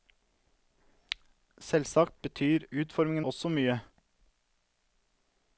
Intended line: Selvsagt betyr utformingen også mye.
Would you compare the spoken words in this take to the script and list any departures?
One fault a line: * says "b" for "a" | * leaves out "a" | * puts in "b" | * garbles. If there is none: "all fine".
all fine